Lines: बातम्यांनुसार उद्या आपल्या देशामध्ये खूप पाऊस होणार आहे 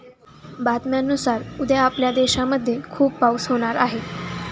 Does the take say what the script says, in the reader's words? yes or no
yes